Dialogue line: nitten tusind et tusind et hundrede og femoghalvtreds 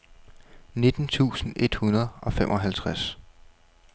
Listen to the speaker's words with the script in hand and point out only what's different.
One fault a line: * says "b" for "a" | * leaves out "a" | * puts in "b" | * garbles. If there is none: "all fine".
* leaves out "tusind et"